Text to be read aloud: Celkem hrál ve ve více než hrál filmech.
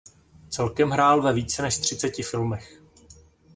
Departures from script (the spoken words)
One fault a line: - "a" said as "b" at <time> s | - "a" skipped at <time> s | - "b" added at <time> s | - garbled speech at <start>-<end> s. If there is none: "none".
- "ve" skipped at 1.3 s
- "hrál" said as "třiceti" at 1.8 s